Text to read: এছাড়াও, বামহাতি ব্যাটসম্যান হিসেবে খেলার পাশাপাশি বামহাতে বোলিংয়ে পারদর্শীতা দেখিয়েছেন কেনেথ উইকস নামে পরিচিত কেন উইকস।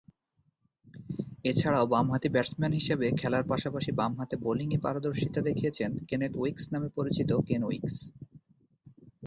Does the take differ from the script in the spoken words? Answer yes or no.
no